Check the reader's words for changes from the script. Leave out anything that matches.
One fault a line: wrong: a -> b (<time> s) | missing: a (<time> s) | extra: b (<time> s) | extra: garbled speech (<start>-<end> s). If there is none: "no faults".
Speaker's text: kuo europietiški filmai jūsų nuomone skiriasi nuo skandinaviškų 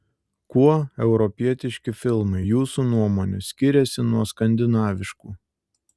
no faults